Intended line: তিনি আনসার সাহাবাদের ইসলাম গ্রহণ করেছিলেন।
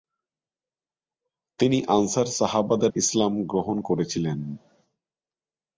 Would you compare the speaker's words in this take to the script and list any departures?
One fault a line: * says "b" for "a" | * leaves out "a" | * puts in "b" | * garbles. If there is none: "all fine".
all fine